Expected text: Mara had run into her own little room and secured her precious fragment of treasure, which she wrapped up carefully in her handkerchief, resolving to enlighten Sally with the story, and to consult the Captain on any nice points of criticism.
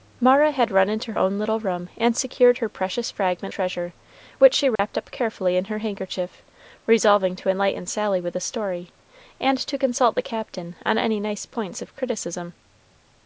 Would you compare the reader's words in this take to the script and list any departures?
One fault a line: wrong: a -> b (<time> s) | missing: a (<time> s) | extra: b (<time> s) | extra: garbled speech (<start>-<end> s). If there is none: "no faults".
missing: her (1.1 s)
missing: of (3.5 s)